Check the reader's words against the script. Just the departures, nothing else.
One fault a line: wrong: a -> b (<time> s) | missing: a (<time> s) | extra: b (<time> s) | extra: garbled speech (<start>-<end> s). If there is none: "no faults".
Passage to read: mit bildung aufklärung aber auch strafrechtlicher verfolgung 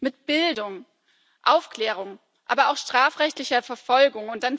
no faults